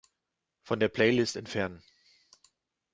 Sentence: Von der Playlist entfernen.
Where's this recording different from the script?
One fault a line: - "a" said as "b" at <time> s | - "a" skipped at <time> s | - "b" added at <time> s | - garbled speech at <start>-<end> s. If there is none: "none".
none